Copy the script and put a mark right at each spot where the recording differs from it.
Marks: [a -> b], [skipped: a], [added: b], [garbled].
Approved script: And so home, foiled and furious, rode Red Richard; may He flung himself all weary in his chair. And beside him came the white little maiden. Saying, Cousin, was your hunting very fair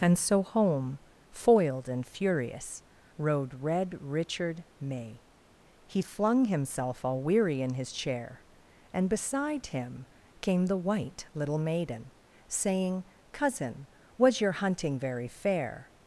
And so home, foiled and furious, rode Red Richard; may He flung himself all weary in his chair. And beside him came the white little maiden. Saying, Cousin, was your hunting very fair